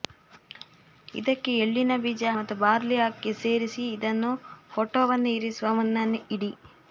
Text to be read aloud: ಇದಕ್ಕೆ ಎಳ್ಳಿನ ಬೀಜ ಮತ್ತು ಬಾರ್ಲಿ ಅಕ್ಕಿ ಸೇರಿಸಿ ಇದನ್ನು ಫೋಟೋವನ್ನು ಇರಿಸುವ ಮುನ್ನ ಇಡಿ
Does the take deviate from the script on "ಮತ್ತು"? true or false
false